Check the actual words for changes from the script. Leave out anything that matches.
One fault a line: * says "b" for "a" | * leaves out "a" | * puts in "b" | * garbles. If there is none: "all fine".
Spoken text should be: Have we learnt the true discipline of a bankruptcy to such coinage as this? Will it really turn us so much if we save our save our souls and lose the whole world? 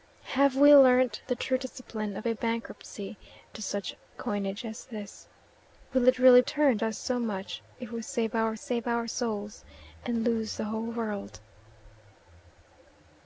all fine